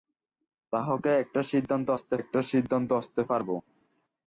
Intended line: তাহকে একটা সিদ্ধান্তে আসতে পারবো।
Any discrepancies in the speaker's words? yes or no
yes